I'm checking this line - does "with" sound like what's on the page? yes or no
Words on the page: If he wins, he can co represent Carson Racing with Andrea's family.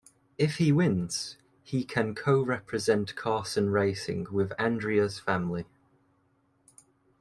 yes